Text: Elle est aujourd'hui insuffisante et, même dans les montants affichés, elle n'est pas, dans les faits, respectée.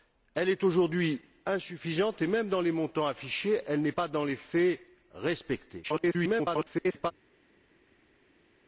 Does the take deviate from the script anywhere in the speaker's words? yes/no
yes